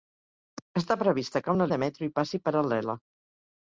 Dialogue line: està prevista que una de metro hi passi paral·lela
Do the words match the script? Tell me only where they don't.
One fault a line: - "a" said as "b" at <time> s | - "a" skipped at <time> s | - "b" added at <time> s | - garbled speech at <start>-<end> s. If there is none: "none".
none